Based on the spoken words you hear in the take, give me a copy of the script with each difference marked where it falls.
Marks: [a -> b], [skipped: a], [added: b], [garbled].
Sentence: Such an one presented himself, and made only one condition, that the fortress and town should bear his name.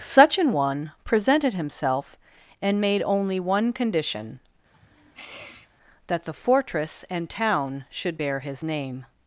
Such an one presented himself, and made only one condition, that the fortress and town should bear his name.